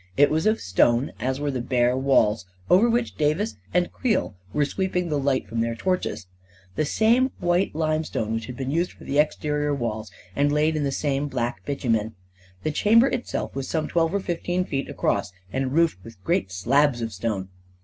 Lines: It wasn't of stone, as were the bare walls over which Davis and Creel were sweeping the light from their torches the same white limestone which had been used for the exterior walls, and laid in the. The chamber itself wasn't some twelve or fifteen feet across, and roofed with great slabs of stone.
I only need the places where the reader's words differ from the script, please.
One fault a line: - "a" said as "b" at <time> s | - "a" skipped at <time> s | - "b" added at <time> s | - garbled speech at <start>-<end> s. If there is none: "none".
- "wasn't" said as "was" at 0.3 s
- "same black bitumen" added at 10.9 s
- "wasn't" said as "was" at 13.6 s